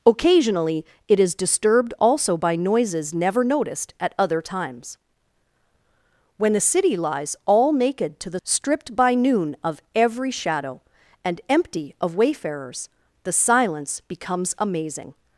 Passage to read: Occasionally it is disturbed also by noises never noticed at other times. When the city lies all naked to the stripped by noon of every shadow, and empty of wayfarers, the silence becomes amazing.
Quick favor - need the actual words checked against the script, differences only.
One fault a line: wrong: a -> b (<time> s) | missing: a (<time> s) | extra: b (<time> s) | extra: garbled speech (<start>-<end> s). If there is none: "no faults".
no faults